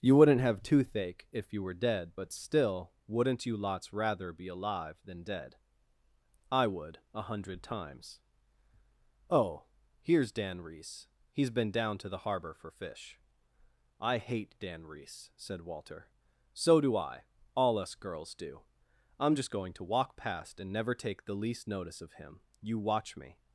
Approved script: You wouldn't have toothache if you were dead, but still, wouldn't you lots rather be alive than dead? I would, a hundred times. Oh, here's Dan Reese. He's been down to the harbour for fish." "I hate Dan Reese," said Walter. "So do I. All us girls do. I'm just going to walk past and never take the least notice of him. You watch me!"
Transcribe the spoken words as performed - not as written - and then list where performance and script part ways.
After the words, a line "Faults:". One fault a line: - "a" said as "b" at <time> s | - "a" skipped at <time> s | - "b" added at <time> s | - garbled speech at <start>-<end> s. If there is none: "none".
You wouldn't have toothache if you were dead, but still, wouldn't you lots rather be alive than dead? I would, a hundred times. Oh, here's Dan Reese. He's been down to the harbour for fish." "I hate Dan Reese," said Walter. "So do I. All us girls do. I'm just going to walk past and never take the least notice of him. You watch me!"
Faults:
none